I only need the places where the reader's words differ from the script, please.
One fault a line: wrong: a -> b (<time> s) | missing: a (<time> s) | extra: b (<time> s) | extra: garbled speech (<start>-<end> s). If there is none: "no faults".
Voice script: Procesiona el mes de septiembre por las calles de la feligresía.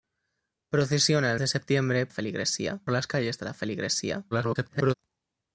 missing: mes (1.4 s)
wrong: por -> feligresía (2.1 s)
extra: garbled speech (4.3-4.9 s)